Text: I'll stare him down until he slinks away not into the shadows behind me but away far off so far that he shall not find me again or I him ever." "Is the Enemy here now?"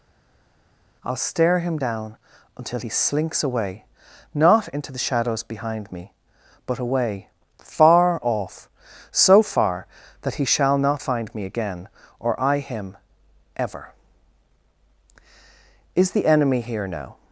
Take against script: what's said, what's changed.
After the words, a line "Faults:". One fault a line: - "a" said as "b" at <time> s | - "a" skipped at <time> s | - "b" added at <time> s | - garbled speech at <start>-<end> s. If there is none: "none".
I'll stare him down until he slinks away not into the shadows behind me but away far off so far that he shall not find me again or I him ever." "Is the Enemy here now?"
Faults:
none